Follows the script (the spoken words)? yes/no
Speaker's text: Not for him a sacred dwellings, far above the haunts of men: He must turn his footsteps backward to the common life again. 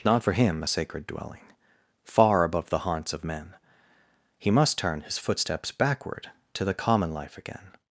no